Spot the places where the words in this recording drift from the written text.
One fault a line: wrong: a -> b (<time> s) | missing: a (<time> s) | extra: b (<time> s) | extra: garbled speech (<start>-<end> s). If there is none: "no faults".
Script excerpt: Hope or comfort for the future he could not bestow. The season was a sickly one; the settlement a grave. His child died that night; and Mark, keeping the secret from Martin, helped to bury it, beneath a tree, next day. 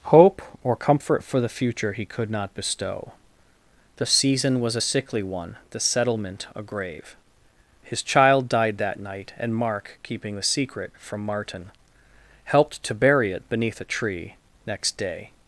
no faults